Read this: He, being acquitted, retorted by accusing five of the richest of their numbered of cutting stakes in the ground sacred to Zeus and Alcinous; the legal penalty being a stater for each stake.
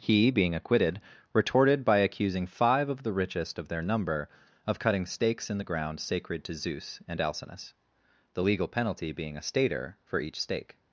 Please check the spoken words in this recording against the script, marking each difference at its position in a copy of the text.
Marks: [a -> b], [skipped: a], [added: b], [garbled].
He, being acquitted, retorted by accusing five of the richest of their [numbered -> number] of cutting stakes in the ground sacred to Zeus and Alcinous; the legal penalty being a stater for each stake.